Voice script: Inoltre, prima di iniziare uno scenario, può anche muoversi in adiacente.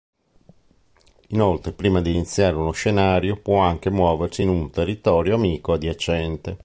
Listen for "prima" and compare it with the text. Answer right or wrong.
right